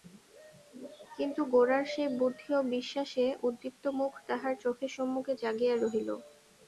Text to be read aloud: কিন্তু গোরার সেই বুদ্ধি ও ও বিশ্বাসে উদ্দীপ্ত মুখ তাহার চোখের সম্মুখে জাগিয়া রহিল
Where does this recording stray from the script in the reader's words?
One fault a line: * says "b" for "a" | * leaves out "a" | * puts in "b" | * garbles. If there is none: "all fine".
* leaves out "ও"